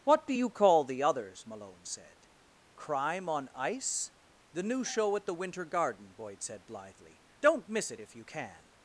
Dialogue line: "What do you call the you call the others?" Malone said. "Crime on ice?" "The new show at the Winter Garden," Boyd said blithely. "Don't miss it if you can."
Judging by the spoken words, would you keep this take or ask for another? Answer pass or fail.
fail